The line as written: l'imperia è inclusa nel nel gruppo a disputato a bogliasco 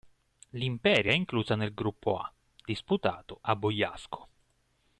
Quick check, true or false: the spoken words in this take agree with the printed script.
false